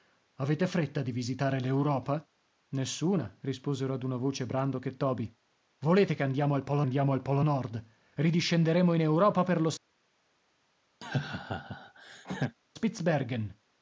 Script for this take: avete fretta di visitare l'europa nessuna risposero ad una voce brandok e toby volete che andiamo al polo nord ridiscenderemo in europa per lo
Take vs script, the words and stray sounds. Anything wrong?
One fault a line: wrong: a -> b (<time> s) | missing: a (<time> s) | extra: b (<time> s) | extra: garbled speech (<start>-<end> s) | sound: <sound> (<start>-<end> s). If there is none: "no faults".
extra: andiamo al polo (6.8 s)
sound: laugh (11.0-12.6 s)